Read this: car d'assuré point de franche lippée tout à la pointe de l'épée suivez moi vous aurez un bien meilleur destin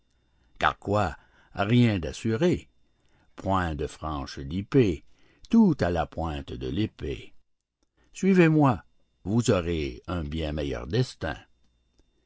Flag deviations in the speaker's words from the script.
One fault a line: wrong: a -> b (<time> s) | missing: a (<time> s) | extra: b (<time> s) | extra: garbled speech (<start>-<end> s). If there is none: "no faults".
extra: quoi rien (0.8 s)